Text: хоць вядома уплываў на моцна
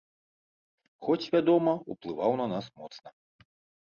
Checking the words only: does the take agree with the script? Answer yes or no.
no